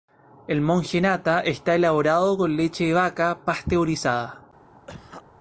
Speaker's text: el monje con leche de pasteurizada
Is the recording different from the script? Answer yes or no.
yes